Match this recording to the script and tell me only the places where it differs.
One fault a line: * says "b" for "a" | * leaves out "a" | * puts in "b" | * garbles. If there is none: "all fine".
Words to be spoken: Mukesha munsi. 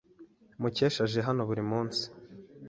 * puts in "aje hano buri"